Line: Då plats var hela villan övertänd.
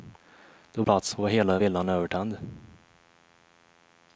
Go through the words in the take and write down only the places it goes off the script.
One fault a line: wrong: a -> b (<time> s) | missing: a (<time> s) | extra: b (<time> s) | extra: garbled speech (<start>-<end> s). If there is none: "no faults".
no faults